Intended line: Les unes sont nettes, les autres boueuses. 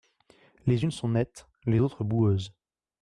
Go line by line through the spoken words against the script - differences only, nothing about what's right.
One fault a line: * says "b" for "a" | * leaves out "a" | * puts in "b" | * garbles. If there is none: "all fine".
all fine